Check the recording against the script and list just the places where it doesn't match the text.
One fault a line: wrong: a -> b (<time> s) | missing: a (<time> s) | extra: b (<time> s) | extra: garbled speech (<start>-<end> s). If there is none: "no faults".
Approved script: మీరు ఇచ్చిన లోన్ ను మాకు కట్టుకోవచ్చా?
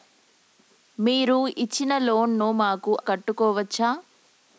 no faults